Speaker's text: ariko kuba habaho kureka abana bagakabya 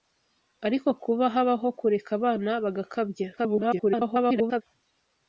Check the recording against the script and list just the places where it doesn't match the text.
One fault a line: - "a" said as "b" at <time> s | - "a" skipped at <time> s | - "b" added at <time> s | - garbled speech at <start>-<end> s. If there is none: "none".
- garbled speech at 3.4-4.6 s